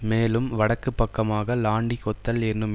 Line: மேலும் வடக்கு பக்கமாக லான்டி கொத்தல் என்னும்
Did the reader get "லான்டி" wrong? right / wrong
right